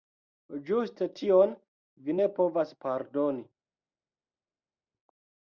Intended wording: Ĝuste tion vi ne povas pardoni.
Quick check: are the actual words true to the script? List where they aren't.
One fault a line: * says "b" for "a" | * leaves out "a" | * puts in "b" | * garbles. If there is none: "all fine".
all fine